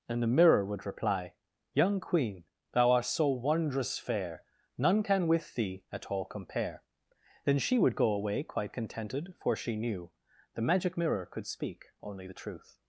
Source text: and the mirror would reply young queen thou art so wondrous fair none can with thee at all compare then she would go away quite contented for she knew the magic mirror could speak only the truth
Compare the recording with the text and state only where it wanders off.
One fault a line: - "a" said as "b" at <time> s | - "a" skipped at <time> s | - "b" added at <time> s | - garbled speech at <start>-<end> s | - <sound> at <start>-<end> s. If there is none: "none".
none